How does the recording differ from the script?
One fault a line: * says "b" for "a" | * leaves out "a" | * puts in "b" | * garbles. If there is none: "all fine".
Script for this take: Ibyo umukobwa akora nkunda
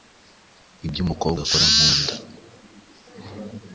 all fine